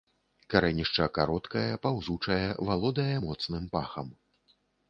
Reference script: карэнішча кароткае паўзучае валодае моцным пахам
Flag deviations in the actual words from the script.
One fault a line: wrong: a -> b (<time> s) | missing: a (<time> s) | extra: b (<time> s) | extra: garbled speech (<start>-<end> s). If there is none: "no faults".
no faults